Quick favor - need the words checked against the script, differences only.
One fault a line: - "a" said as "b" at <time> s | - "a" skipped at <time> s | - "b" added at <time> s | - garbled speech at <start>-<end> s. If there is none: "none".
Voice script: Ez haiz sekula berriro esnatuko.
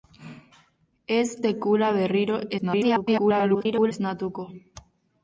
- "haiz" skipped at 1.3 s
- garbled speech at 2.6-3.9 s